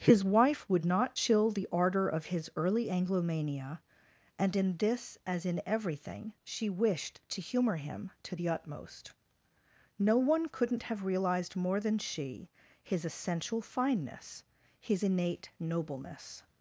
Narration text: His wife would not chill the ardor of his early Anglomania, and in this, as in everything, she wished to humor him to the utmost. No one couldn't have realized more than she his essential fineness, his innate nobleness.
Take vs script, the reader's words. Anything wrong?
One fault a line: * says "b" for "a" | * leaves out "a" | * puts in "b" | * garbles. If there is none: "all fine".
all fine